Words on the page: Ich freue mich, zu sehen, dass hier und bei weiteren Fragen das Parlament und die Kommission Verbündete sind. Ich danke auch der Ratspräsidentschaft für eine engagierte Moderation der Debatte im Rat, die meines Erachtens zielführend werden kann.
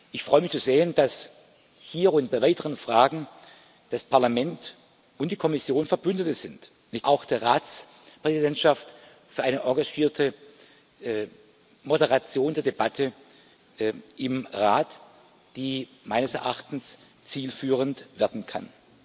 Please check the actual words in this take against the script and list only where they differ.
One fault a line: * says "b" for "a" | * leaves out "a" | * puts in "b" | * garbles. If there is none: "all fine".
* leaves out "danke"